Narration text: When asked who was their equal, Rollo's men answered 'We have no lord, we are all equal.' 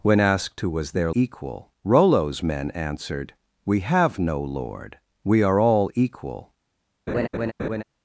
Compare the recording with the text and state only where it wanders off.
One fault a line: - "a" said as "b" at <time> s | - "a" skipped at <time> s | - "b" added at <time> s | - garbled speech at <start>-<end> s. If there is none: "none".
none